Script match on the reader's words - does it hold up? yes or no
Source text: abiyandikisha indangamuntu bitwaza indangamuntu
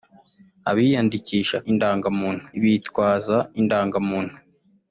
yes